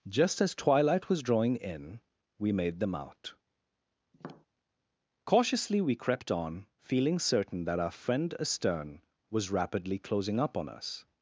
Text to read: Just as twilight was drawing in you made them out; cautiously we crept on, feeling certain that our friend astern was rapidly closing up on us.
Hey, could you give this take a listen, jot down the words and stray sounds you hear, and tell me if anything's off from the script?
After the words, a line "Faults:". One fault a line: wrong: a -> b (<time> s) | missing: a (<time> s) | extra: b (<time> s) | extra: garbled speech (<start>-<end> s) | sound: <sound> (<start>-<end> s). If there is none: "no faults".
Just as twilight was drawing in we made them out; cautiously we crept on, feeling certain that our friend astern was rapidly closing up on us.
Faults:
wrong: you -> we (2.4 s)
sound: tap (4.1-4.5 s)